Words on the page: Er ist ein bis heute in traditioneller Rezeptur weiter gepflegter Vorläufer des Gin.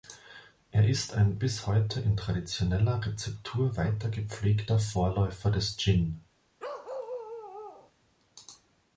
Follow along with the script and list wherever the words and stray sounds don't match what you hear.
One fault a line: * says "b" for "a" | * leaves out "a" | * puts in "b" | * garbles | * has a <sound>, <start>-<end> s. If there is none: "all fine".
* has a bark, 6.6-7.9 s